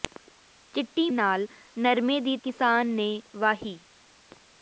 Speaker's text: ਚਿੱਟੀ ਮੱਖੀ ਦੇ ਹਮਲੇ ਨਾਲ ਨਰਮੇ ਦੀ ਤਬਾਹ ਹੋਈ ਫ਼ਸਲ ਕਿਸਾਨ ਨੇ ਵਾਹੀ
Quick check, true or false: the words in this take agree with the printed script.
false